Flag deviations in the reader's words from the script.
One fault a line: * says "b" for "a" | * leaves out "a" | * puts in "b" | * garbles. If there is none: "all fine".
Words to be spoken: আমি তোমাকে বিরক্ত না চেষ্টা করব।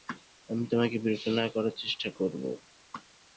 * puts in "করার"